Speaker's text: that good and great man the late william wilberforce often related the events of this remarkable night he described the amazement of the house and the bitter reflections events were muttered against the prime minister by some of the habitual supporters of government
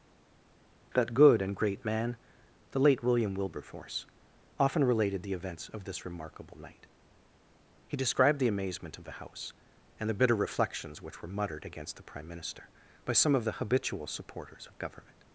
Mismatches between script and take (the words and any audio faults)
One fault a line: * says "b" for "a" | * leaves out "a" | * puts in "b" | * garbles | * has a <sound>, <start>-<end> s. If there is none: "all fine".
* says "which" for "events"